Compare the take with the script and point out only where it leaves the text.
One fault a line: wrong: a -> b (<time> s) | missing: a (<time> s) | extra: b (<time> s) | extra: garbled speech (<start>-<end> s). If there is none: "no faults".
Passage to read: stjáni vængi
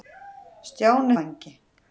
no faults